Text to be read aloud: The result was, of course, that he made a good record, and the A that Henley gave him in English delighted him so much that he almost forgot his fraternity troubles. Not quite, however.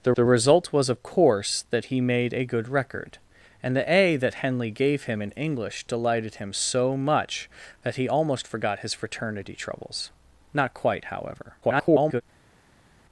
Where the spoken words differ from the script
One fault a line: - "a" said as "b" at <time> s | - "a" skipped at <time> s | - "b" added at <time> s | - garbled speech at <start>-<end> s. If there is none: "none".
- "the" added at 0.1 s
- garbled speech at 11.6-12.2 s